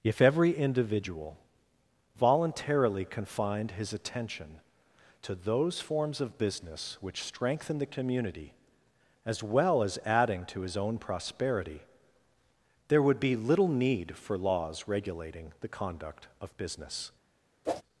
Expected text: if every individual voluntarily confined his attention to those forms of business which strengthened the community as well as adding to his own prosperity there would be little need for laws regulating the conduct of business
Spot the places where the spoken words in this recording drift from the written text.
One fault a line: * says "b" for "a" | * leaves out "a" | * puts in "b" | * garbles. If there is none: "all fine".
* says "strengthen" for "strengthened"